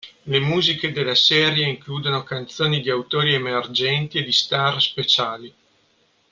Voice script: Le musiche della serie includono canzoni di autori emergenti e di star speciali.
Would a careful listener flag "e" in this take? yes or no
no